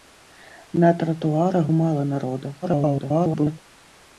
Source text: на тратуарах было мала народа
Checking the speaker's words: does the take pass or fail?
fail